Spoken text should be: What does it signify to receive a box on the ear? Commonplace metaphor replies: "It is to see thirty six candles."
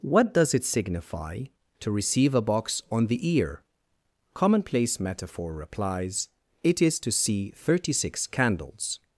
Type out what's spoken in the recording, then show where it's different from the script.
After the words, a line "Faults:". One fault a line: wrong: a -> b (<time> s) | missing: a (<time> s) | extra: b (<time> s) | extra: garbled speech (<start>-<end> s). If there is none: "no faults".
What does it signify to receive a box on the ear? Commonplace metaphor replies: "It is to see thirty six candles."
Faults:
no faults